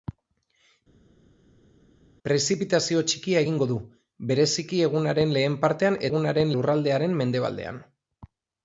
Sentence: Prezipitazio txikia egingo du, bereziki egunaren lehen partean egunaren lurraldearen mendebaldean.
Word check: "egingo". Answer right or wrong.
right